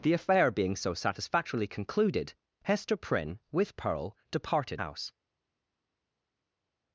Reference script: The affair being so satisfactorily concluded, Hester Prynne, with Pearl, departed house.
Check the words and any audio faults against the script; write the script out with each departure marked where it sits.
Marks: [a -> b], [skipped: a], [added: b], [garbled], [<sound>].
The affair being so satisfactorily concluded, Hester Prynne, with Pearl, departed house.